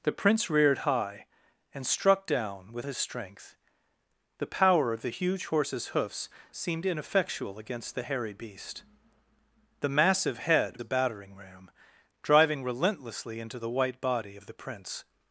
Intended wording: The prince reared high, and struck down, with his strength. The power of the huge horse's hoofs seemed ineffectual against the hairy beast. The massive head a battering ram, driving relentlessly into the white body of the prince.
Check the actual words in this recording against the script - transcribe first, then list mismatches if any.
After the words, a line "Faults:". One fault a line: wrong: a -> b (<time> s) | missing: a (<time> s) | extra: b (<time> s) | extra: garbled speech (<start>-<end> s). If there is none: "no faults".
The prince reared high, and struck down, with his strength. The power of the huge horse's hoofs seemed ineffectual against the hairy beast. The massive head a battering ram, driving relentlessly into the white body of the prince.
Faults:
no faults